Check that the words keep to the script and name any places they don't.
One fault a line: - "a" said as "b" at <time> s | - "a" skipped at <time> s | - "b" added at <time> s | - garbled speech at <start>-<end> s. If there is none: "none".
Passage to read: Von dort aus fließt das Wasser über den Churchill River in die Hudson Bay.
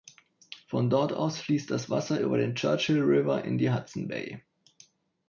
none